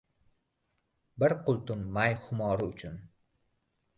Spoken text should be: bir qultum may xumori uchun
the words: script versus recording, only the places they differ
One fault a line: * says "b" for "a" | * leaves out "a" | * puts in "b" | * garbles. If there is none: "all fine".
all fine